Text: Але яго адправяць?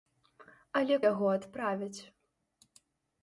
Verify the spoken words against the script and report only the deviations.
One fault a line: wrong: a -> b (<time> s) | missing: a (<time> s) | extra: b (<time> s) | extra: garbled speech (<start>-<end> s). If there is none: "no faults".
no faults